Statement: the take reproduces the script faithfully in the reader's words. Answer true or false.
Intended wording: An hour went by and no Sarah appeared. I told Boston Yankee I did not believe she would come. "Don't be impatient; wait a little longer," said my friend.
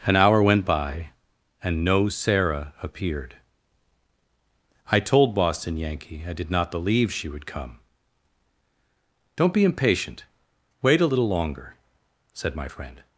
true